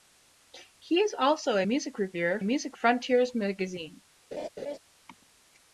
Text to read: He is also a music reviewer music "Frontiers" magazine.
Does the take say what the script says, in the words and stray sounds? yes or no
no